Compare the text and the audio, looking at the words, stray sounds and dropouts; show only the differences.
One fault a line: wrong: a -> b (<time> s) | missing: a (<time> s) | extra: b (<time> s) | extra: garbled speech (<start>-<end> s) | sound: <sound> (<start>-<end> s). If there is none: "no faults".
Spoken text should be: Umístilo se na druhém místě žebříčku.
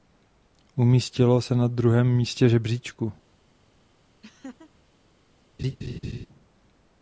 sound: laugh (4.2-4.7 s)
sound: laugh (5.6-6.3 s)